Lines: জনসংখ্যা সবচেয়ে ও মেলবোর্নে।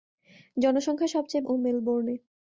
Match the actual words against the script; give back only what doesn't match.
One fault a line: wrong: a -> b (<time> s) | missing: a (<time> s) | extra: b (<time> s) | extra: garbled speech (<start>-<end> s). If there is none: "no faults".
no faults